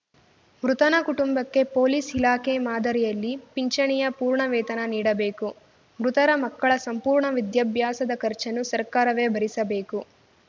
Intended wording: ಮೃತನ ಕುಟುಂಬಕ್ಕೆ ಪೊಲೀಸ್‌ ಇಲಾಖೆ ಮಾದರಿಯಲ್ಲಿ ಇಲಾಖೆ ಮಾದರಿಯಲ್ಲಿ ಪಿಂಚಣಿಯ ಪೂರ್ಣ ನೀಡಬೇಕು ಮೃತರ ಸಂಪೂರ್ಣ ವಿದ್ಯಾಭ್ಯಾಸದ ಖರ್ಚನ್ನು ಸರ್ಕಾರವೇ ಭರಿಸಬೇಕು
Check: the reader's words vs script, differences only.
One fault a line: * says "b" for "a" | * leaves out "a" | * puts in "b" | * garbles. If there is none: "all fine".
* leaves out "ಇಲಾಖೆ ಮಾದರಿಯಲ್ಲಿ"
* puts in "ವೇತನ"
* puts in "ಮಕ್ಕಳ"